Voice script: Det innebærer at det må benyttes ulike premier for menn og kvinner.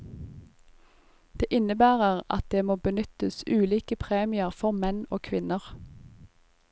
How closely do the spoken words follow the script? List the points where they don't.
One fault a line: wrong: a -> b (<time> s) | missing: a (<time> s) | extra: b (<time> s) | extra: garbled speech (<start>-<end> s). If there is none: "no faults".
no faults